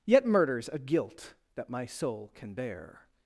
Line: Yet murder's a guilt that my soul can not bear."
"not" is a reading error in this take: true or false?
true